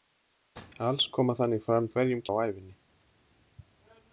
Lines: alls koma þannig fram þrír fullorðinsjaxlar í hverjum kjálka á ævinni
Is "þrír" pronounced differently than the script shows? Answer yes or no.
yes